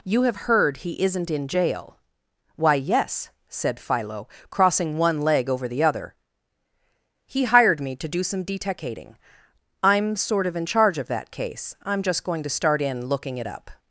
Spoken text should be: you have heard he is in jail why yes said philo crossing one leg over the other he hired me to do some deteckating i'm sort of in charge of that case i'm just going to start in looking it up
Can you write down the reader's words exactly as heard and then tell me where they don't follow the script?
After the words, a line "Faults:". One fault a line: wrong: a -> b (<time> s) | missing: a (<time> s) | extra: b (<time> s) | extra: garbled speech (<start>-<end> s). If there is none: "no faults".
you have heard he isn't in jail why yes said philo crossing one leg over the other he hired me to do some deteckating i'm sort of in charge of that case i'm just going to start in looking it up
Faults:
wrong: is -> isn't (1.0 s)